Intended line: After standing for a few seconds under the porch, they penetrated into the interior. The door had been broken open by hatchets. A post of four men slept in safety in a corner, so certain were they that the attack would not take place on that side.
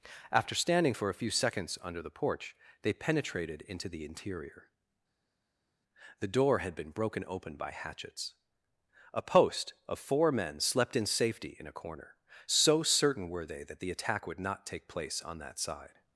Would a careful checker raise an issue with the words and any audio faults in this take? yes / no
no